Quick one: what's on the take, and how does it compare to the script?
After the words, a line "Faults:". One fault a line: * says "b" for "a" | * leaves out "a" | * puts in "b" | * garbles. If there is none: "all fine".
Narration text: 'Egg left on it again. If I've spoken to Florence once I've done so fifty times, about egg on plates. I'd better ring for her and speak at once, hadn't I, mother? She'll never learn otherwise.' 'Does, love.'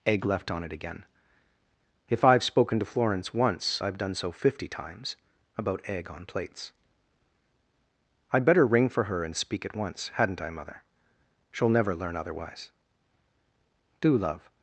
'Egg left on it again. If I've spoken to Florence once I've done so fifty times, about egg on plates. I'd better ring for her and speak at once, hadn't I, mother? She'll never learn otherwise.' 'Do, love.'
Faults:
* says "Do" for "Does"